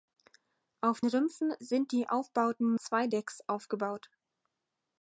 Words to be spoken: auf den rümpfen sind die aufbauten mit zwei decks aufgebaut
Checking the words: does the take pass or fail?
fail